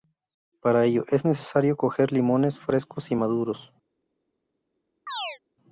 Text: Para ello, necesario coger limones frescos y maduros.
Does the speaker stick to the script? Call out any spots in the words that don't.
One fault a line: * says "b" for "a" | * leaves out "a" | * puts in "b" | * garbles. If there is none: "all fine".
* puts in "es"